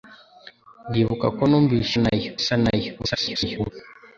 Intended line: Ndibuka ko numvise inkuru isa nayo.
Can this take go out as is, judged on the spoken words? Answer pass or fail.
fail